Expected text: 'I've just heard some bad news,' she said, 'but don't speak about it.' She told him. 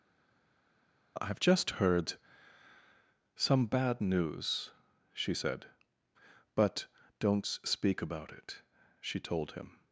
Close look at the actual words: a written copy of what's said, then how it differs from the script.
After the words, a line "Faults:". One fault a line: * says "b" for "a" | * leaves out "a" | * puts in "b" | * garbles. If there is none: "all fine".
'I've just heard some bad news,' she said, 'but don't speak about it.' She told him.
Faults:
all fine